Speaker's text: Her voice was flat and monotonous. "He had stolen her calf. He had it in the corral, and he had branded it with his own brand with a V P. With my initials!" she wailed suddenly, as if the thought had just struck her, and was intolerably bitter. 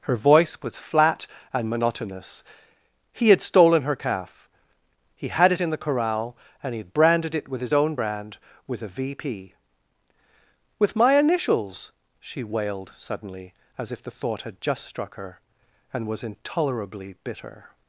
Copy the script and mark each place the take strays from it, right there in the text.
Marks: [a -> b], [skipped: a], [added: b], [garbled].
Her voice was flat and monotonous. "He had stolen her calf. He had it in the corral, and he had branded it with his own brand with a V P. With my initials!" she wailed suddenly, as if the thought had just struck her, and was intolerably bitter.